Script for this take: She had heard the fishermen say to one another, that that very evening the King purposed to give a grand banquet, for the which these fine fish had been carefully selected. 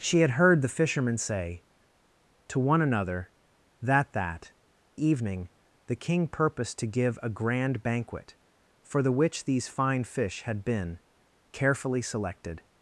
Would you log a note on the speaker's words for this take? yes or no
yes